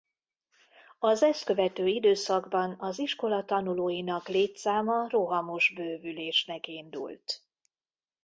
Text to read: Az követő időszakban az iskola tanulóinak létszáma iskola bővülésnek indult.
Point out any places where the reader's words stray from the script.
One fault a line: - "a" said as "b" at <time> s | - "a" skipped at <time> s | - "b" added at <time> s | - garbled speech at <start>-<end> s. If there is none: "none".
- "ezt" added at 1.2 s
- "iskola" said as "rohamos" at 5.1 s